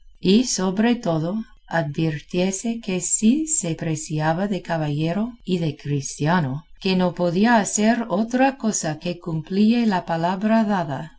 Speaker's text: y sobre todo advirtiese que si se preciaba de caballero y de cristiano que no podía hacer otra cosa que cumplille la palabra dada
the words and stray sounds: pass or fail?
pass